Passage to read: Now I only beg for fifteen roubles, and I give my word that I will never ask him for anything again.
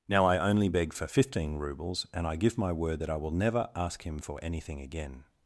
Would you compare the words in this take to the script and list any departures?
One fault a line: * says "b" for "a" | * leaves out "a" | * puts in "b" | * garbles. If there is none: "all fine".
all fine